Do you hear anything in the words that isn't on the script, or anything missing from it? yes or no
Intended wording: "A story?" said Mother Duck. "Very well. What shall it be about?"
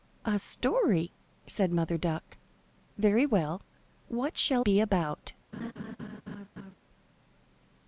yes